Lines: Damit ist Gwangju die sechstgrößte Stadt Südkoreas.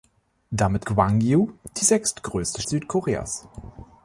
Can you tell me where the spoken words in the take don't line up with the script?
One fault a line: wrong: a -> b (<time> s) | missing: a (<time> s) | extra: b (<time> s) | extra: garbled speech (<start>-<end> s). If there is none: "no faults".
missing: ist (0.8 s)
missing: Stadt (2.6 s)